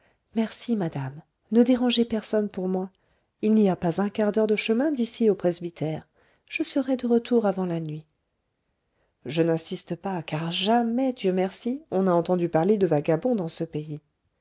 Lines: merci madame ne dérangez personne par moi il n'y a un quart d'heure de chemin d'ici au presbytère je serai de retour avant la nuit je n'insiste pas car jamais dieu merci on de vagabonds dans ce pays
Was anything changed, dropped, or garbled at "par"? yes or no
yes